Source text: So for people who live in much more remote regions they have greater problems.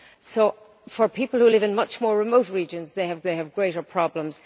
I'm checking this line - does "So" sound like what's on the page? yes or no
yes